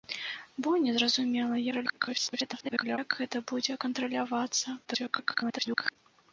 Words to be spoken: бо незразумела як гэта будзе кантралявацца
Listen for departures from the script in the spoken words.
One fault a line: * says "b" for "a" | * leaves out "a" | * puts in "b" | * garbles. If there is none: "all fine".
* garbles
* garbles